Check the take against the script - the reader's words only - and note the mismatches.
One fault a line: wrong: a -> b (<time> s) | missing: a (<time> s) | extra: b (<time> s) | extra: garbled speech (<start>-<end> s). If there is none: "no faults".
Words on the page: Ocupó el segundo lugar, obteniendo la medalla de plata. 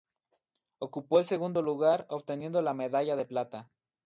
no faults